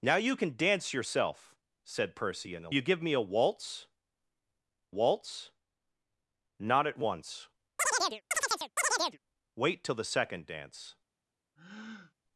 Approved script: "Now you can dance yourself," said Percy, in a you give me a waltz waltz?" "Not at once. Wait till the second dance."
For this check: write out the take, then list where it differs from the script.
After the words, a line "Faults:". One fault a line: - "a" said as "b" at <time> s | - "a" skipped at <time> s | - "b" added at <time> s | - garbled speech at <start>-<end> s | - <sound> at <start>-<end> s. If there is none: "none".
"Now you can dance yourself," said Percy, in a you give me a waltz waltz?" "Not at once. Wait till the second dance."
Faults:
- chirp at 7.8-9.2 s
- breath at 11.6-12.1 s